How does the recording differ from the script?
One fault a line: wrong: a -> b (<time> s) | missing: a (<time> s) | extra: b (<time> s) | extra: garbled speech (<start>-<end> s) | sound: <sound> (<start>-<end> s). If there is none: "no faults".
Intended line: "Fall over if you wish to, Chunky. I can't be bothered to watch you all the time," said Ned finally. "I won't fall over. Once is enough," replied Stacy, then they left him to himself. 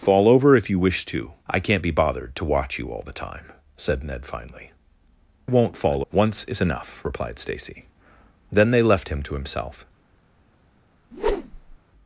missing: Chunky (1.3 s)
missing: I (4.7 s)
missing: over (6.0 s)
sound: whoosh (11.1-11.8 s)